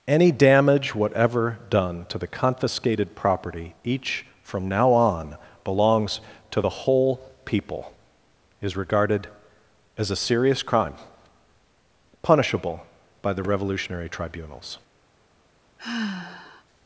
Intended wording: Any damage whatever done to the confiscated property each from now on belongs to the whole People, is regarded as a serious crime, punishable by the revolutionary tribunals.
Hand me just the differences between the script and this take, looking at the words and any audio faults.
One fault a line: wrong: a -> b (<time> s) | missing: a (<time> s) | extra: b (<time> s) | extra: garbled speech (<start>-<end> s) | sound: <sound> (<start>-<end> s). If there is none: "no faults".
sound: sigh (15.8-16.6 s)